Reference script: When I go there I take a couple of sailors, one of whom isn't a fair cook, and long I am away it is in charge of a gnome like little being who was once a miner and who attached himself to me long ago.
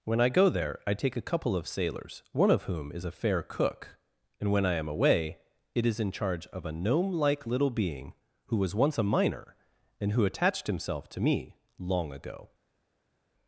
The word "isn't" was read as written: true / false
false